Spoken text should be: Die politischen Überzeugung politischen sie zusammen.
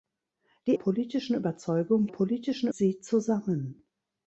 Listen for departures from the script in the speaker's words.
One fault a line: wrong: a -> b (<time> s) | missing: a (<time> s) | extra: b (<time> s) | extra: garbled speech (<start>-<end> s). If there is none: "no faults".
no faults